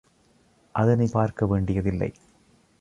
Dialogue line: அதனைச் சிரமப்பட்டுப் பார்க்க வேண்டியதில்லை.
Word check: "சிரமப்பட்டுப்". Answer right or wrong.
wrong